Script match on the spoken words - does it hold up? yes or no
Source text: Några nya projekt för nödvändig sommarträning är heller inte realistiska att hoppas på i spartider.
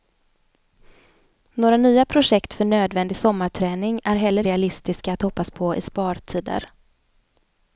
no